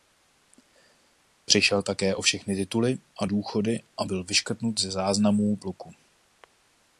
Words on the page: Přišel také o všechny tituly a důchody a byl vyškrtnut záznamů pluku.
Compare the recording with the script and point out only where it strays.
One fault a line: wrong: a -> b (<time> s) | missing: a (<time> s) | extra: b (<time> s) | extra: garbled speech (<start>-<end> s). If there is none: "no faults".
extra: ze (4.8 s)